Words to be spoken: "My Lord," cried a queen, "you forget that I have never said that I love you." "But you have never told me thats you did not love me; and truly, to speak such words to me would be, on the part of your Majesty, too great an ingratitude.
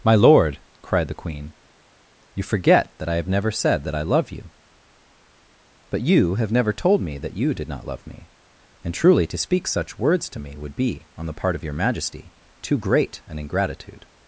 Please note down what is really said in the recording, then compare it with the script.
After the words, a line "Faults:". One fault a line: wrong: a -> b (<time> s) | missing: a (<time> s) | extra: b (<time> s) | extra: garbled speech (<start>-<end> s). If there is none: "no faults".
"My Lord," cried the queen, "you forget that I have never said that I love you." "But you have never told me that you did not love me; and truly, to speak such words to me would be, on the part of your Majesty, too great an ingratitude.
Faults:
wrong: a -> the (1.1 s)
wrong: thats -> that (7.2 s)